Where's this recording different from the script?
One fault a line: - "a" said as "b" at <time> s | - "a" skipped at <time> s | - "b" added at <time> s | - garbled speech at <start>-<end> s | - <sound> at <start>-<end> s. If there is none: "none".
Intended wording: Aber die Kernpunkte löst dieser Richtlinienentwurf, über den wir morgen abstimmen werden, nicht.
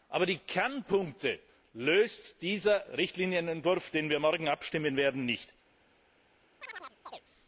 - chirp at 6.6-7.2 s